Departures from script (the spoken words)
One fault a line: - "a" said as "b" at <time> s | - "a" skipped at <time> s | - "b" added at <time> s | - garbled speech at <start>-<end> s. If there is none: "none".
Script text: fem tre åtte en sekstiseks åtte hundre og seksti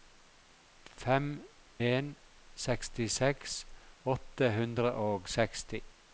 - "tre åtte" skipped at 1.3 s